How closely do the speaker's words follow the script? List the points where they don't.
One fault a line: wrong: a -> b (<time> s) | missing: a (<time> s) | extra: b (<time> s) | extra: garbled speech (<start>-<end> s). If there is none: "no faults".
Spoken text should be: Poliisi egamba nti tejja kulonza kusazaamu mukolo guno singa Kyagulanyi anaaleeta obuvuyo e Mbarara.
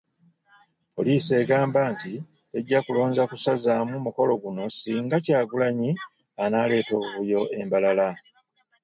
no faults